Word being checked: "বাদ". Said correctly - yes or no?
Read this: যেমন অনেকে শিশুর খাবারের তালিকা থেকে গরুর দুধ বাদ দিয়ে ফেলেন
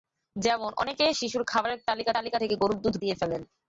no